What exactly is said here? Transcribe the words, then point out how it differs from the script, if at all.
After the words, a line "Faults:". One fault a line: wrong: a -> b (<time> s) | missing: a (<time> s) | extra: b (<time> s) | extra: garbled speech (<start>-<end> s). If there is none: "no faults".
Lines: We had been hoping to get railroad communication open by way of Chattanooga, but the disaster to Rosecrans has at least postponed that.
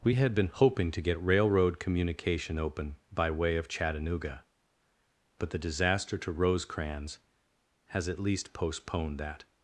We had been hoping to get railroad communication open by way of Chattanooga, but the disaster to Rosecrans has at least postponed that.
Faults:
no faults